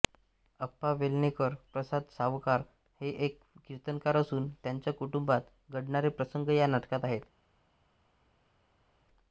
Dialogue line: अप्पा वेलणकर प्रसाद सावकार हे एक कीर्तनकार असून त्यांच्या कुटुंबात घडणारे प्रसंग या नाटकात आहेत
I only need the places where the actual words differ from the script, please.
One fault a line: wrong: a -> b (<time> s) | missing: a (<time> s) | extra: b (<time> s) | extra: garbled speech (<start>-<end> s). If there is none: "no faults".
no faults